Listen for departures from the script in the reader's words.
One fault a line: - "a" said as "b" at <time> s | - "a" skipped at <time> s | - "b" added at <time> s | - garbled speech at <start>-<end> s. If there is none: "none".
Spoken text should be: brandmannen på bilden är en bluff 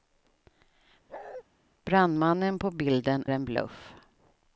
- "är" skipped at 3.3 s